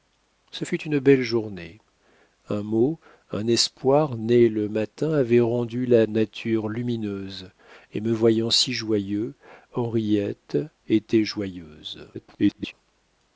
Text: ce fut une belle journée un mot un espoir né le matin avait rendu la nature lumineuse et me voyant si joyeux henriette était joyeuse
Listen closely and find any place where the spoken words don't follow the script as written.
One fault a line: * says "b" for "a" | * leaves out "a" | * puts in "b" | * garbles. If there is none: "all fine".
* garbles